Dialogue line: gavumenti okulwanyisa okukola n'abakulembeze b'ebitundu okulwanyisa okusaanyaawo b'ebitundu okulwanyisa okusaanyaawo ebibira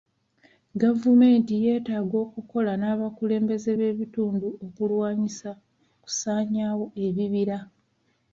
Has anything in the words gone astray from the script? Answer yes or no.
yes